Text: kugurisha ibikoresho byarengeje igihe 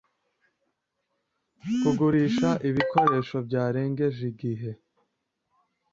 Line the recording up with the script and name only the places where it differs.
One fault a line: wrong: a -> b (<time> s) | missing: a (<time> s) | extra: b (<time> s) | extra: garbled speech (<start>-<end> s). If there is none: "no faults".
no faults